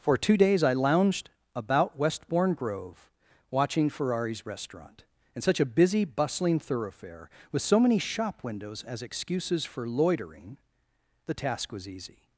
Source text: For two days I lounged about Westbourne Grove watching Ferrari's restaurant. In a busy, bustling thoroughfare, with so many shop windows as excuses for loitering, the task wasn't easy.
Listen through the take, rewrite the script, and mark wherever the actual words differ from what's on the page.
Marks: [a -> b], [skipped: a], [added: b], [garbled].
For two days I lounged about Westbourne Grove watching Ferrari's restaurant. In [added: such] a busy, bustling thoroughfare, with so many shop windows as excuses for loitering, the task [wasn't -> was] easy.